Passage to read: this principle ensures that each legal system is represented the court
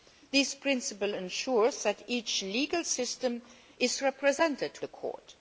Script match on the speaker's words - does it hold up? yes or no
yes